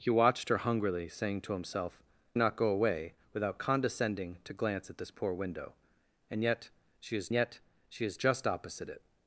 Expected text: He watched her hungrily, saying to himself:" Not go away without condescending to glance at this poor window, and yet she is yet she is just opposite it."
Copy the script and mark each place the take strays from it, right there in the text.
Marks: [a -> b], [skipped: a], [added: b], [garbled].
He watched her hungrily, saying to himself:" Not go away without condescending to glance at this poor window, and yet she is yet she is just opposite it."